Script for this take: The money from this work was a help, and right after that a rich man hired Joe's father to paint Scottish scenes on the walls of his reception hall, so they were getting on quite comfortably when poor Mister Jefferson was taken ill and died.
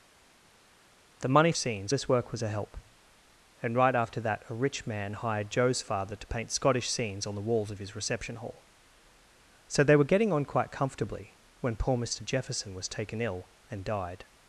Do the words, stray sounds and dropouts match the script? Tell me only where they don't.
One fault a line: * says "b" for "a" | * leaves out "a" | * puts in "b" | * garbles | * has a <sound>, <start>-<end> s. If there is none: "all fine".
* says "scenes" for "from"